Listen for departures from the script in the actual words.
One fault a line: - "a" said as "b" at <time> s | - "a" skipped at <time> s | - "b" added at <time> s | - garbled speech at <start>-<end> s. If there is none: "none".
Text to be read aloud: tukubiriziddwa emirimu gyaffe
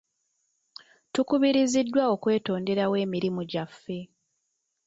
- "okwetonderawo" added at 2.1 s